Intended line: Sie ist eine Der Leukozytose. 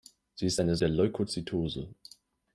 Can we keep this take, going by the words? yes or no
yes